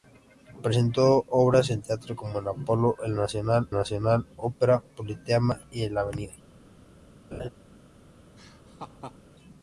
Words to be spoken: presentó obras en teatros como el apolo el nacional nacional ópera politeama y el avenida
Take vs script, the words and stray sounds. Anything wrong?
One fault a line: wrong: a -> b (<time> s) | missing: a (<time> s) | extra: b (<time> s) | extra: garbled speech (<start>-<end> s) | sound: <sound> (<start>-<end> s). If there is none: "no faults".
sound: laugh (7.3-7.5 s)
sound: laugh (8.4-9.2 s)